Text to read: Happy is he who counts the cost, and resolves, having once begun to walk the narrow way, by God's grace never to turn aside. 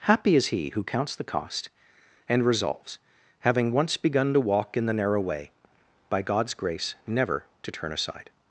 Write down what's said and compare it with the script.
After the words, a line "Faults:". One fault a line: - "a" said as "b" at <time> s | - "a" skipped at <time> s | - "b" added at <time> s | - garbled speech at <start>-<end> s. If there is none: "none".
Happy is he who counts the cost, and resolves, having once begun to walk in the narrow way, by God's grace never to turn aside.
Faults:
- "in" added at 4.8 s